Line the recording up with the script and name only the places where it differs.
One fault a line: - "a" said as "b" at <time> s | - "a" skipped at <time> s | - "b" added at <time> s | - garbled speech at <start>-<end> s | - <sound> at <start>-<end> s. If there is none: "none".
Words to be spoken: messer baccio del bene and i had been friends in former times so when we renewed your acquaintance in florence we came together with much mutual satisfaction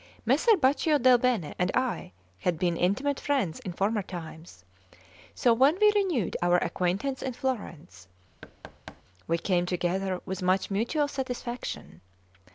- "intimate" added at 2.8 s
- "your" said as "our" at 6.4 s
- thud at 8.4-9.0 s